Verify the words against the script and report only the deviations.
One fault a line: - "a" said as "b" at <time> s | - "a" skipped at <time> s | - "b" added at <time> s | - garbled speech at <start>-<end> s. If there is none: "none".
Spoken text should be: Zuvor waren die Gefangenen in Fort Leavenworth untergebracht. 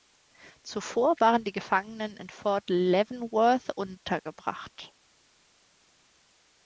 none